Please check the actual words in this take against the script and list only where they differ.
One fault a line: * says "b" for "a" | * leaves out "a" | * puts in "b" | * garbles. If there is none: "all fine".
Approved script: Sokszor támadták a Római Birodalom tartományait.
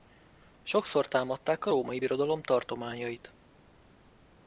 all fine